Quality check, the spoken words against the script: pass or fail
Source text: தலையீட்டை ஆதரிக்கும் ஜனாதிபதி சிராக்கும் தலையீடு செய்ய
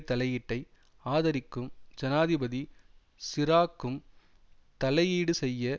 pass